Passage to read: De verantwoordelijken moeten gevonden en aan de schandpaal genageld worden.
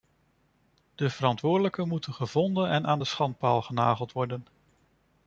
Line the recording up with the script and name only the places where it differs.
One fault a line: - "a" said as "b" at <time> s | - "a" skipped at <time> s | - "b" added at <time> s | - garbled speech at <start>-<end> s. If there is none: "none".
none